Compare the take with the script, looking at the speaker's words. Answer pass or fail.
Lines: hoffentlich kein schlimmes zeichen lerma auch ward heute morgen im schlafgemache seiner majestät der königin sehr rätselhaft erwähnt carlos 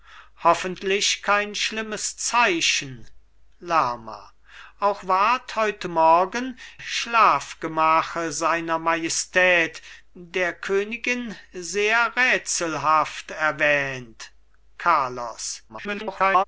fail